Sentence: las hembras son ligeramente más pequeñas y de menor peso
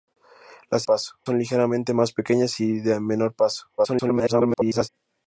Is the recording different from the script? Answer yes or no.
yes